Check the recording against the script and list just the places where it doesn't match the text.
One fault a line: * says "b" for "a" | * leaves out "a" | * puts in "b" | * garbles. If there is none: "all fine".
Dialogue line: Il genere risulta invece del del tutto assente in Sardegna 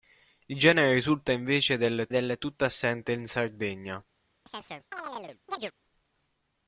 all fine